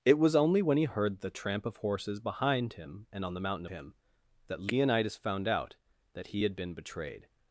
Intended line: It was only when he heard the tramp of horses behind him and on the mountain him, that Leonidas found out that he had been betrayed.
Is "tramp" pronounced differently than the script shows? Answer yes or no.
no